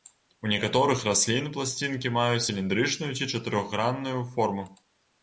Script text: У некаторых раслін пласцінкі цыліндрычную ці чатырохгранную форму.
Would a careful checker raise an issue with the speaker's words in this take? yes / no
yes